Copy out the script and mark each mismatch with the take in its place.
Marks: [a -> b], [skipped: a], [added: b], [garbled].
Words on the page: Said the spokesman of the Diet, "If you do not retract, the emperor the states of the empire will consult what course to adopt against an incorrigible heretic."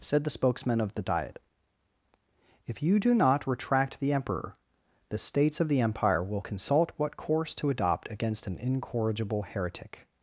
Said the spokesman of the Diet, "If you do not retract, the emperor the states of the empire will consult what course to adopt against an incorrigible heretic."